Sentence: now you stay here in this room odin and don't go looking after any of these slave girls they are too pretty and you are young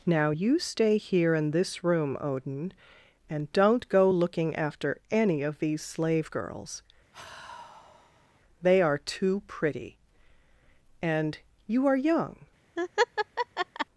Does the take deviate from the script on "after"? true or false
false